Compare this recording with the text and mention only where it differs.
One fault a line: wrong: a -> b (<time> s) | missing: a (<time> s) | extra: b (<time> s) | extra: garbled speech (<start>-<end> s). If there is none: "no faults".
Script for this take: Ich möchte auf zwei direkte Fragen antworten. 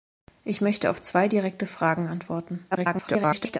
extra: garbled speech (2.7-3.6 s)